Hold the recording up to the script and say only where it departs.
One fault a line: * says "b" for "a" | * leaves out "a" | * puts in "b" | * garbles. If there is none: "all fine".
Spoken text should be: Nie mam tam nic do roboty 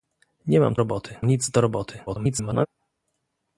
* says "roboty" for "tam"
* garbles